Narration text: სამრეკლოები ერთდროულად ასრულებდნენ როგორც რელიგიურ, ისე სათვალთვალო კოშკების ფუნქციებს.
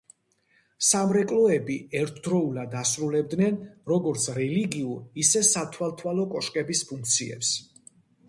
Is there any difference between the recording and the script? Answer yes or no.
no